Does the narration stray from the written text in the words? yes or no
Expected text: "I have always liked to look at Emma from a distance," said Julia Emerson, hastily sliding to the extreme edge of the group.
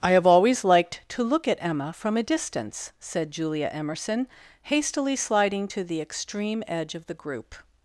no